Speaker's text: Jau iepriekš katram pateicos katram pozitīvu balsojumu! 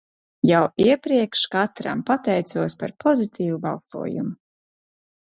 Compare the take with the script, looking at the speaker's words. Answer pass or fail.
fail